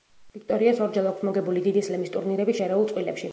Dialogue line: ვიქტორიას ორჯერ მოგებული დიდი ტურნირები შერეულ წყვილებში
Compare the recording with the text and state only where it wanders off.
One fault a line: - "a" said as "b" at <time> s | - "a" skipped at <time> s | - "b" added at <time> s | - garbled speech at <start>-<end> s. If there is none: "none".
- "აქვს" added at 1.1 s
- "სლემის" added at 1.9 s